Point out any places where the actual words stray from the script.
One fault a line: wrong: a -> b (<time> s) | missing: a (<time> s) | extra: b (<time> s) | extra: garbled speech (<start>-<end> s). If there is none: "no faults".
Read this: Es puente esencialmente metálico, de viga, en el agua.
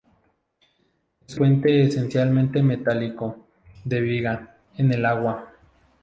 no faults